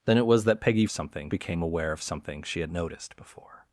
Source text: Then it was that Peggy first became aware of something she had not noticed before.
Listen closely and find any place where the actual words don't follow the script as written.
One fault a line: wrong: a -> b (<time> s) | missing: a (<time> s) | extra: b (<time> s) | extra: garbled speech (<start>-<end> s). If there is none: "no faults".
wrong: first -> something (0.9 s)
missing: not (2.7 s)